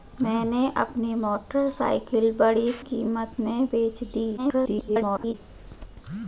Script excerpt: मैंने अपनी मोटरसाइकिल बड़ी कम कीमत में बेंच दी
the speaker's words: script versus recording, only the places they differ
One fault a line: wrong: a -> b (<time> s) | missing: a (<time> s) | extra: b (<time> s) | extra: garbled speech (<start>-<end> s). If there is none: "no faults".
missing: कम (2.7 s)
extra: garbled speech (4.4-5.3 s)